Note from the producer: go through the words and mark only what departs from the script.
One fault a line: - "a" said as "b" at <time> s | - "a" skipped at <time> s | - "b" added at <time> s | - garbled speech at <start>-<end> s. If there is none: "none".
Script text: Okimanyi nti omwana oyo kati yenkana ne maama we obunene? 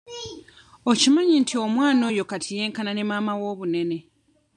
none